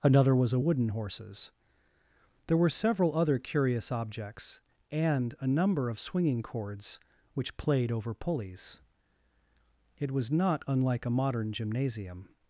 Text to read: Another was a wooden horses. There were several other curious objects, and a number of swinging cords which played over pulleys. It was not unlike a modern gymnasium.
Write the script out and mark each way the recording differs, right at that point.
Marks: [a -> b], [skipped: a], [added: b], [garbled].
Another was a wooden horses. There were several other curious objects, and a number of swinging cords which played over pulleys. It was not unlike a modern gymnasium.